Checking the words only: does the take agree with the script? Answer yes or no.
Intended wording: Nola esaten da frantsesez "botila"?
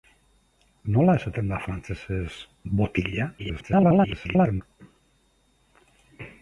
no